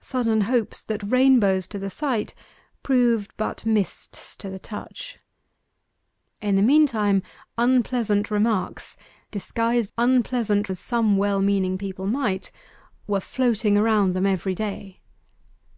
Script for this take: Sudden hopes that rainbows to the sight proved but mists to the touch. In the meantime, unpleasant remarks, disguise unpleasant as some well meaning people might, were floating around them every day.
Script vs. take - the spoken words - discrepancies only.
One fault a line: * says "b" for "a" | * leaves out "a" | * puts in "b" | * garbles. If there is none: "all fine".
all fine